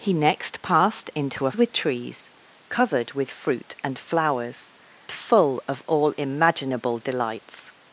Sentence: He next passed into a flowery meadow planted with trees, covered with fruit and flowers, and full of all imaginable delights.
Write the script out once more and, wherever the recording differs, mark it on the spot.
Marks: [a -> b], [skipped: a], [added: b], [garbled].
He next passed into a [skipped: flowery meadow planted] with trees, covered with fruit and flowers, [skipped: and] full of all imaginable delights.